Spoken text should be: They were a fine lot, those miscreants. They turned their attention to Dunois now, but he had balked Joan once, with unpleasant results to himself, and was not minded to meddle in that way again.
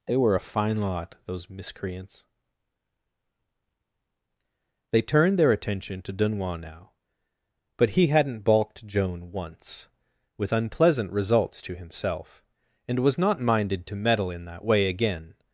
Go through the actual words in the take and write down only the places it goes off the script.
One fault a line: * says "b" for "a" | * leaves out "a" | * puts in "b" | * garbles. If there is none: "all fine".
* says "hadn't" for "had"